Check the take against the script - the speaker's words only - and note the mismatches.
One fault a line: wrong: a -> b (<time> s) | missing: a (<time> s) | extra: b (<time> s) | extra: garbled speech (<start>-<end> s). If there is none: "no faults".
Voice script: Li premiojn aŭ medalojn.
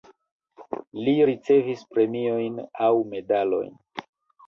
extra: ricevis (1.3 s)